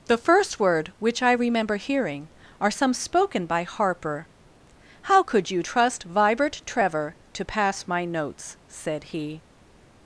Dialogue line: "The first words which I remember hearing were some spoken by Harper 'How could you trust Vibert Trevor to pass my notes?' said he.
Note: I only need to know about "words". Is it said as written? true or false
false